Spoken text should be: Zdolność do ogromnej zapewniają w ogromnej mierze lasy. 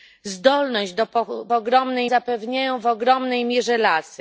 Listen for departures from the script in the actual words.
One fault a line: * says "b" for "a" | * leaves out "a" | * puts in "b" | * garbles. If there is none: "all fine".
all fine